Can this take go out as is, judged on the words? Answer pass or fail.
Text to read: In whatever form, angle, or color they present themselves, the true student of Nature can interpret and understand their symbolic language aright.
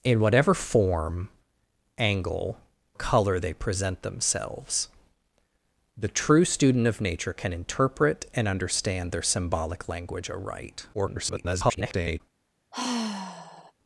fail